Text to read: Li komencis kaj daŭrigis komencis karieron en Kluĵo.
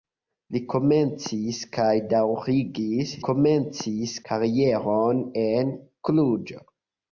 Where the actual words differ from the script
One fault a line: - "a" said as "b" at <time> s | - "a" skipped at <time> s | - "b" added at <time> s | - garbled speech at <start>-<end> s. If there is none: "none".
none